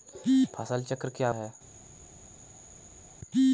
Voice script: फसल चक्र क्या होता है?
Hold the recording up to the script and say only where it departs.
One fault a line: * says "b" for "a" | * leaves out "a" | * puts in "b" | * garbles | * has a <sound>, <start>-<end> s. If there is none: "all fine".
* leaves out "होता"